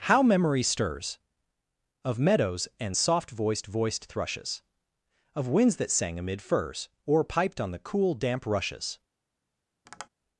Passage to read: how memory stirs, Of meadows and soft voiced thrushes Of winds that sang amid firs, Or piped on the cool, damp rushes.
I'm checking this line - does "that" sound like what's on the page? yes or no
yes